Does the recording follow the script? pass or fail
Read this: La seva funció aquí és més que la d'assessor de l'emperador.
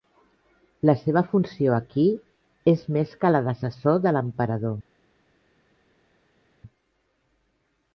pass